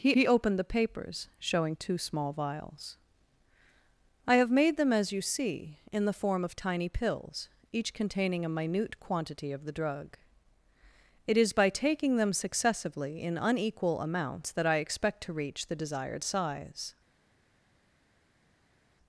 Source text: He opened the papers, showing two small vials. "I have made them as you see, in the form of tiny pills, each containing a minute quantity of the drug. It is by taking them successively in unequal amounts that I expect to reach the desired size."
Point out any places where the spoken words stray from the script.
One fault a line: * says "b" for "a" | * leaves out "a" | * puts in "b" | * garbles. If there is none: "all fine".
* puts in "he"